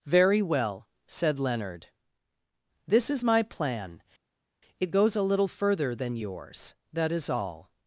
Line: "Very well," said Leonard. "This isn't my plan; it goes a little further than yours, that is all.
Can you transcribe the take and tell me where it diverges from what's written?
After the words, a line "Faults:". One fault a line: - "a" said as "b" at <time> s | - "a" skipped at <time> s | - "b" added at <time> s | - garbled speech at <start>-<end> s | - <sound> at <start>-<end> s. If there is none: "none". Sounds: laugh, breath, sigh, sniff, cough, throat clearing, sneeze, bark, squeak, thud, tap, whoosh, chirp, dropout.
"Very well," said Leonard. "This is my plan; it goes a little further than yours, that is all.
Faults:
- "isn't" said as "is" at 3.1 s